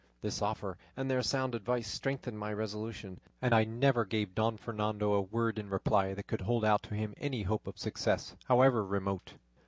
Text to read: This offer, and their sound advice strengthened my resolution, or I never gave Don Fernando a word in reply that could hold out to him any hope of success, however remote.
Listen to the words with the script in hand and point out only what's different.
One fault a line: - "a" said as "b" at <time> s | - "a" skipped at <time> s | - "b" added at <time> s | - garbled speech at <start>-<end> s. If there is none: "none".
- "or" said as "and" at 3.4 s